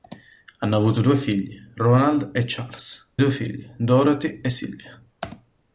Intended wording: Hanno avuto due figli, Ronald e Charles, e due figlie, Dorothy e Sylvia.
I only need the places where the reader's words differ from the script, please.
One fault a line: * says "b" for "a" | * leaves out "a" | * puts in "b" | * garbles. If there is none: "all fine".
* leaves out "e"